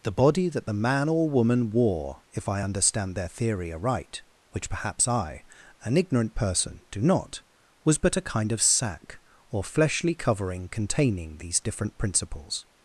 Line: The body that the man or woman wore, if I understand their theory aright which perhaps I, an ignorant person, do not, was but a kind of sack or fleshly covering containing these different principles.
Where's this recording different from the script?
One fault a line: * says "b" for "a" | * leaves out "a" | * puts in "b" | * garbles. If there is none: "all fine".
all fine